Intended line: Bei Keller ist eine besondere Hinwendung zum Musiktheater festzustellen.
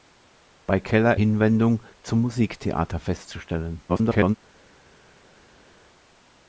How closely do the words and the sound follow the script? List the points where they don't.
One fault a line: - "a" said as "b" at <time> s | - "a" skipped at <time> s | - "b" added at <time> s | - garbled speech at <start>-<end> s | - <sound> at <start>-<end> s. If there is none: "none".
- "ist eine besondere" skipped at 1.2 s
- garbled speech at 3.9-4.4 s